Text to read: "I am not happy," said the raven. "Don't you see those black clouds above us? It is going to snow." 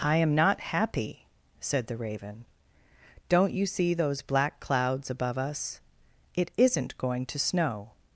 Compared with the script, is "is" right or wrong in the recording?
wrong